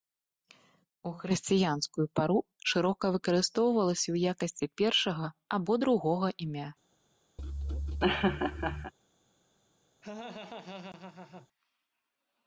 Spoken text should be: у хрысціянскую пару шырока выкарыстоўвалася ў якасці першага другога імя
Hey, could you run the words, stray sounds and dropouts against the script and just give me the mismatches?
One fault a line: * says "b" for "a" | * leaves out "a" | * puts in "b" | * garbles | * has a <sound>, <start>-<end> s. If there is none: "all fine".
* puts in "або"
* has a laugh, 7.4-8.9 s
* has a laugh, 10.0-11.5 s